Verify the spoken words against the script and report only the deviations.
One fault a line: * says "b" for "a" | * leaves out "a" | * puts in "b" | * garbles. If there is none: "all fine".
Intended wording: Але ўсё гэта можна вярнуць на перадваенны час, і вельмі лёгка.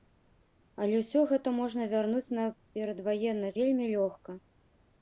* leaves out "час і"